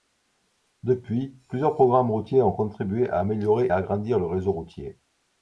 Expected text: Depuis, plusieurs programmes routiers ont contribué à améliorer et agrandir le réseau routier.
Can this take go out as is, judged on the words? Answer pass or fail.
fail